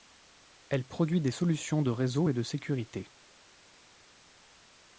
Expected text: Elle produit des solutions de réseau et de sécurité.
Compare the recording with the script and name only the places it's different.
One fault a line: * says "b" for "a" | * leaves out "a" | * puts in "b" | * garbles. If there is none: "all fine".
all fine